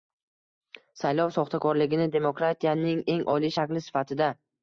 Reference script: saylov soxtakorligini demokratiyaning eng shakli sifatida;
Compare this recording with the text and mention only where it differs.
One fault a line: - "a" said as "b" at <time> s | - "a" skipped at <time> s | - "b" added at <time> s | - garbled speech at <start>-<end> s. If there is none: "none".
- "oliy" added at 3.3 s